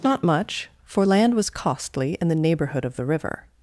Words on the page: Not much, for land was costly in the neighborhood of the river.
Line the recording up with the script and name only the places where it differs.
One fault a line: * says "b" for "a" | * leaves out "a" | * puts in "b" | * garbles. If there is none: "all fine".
all fine